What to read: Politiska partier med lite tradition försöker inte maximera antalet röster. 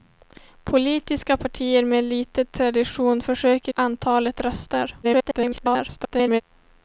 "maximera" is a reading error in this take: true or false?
true